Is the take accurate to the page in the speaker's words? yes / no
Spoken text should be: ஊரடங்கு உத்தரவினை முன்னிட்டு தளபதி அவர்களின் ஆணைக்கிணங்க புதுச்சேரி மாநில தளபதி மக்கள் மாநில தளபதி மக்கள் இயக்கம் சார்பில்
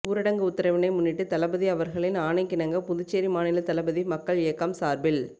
no